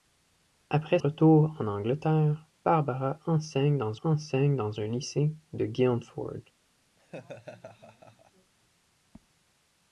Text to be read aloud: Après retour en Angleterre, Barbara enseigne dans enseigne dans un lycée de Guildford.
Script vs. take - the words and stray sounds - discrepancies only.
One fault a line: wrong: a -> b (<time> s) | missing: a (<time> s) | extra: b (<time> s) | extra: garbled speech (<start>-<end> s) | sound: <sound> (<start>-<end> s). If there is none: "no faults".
sound: laugh (7.0-8.5 s)